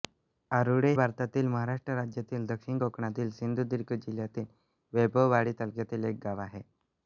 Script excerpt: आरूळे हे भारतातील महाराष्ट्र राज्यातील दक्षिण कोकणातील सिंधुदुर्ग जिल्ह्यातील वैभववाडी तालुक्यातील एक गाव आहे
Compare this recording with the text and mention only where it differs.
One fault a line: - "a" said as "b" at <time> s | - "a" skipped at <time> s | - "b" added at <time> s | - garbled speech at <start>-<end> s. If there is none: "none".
- "हे" skipped at 0.9 s